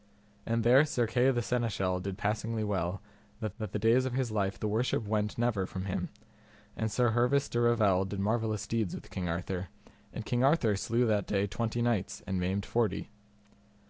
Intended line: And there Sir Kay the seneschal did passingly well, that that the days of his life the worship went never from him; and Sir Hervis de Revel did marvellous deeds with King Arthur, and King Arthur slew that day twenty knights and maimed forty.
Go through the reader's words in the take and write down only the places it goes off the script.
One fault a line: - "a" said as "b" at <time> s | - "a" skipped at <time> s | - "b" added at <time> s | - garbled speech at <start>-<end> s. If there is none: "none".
none